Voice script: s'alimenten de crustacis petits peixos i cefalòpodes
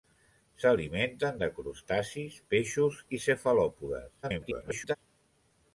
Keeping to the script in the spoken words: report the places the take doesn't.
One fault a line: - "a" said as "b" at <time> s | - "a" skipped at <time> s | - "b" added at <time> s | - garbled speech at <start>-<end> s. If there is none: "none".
- "petits" skipped at 2.4 s
- garbled speech at 4.2-5.0 s